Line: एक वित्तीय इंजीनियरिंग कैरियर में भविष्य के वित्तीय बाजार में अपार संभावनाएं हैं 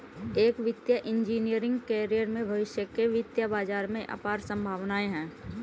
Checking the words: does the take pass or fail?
pass